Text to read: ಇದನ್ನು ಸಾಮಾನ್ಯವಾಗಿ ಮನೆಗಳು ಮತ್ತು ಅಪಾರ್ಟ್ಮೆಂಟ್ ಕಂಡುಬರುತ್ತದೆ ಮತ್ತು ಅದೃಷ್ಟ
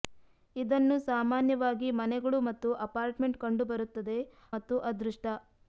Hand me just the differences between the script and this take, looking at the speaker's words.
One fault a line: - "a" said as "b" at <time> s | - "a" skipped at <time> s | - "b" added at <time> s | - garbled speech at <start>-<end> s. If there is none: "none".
none